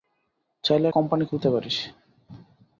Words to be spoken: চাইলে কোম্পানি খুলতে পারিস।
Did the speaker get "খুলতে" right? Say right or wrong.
right